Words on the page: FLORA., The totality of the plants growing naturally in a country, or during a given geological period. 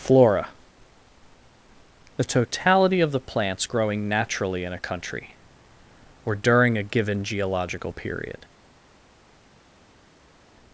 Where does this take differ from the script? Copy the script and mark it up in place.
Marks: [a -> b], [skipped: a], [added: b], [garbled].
FLORA., The totality of the plants growing naturally in a country, or during a given geological period.